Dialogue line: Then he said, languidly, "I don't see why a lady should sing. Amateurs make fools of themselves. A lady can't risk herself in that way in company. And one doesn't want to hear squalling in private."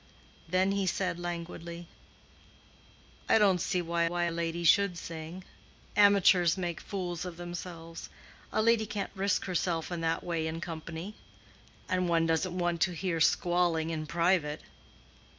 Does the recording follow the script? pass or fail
fail